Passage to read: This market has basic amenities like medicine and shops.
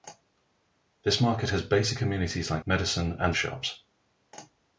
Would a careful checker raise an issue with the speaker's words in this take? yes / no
no